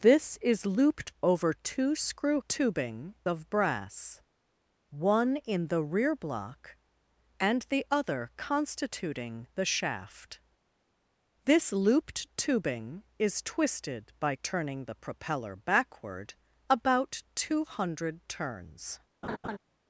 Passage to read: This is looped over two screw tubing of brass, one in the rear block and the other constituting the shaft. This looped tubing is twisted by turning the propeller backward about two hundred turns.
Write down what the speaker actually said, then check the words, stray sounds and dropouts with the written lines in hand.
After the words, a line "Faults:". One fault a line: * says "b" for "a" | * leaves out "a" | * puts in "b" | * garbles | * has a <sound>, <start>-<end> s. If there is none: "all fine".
This is looped over two screw tubing of brass, one in the rear block and the other constituting the shaft. This looped tubing is twisted by turning the propeller backward about two hundred turns.
Faults:
* has a laugh, 19.2-19.6 s